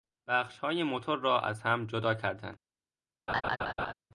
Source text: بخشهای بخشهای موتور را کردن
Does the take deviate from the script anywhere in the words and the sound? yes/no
yes